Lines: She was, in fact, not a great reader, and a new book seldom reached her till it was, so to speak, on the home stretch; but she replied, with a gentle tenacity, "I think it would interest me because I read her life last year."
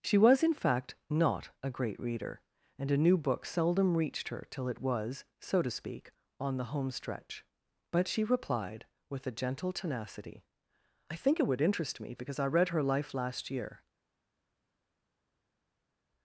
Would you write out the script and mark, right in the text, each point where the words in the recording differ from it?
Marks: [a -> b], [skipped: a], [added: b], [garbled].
She was, in fact, not a great reader, and a new book seldom reached her till it was, so to speak, on the home stretch; but she replied, with a gentle tenacity, "I think it would interest me because I read her life last year."